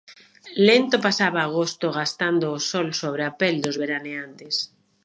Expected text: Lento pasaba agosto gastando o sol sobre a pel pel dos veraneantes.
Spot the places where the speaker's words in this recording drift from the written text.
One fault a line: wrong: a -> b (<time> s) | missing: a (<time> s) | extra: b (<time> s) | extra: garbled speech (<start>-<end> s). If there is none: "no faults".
missing: pel (3.5 s)